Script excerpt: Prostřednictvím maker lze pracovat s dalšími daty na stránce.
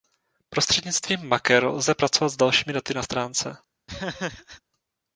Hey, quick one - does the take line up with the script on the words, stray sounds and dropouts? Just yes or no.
no